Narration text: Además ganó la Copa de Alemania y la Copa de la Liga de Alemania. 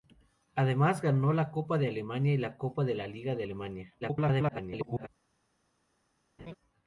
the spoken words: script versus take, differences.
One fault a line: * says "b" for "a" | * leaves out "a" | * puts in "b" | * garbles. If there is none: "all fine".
* garbles